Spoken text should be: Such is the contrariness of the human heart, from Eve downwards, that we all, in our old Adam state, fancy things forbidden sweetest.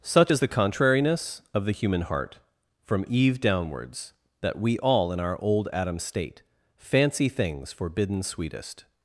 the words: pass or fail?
pass